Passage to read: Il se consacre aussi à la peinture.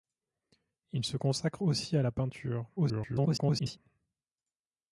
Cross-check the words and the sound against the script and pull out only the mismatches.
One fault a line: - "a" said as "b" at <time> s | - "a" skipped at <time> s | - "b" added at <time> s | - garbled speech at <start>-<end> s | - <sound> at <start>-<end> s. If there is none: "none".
- garbled speech at 2.8-3.8 s